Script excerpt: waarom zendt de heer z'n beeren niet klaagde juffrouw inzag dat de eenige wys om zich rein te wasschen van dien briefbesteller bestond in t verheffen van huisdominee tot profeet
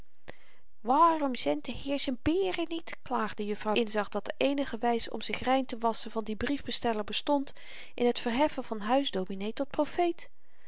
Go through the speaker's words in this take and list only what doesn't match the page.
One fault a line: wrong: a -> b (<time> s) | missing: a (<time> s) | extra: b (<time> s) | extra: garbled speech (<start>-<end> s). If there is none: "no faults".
no faults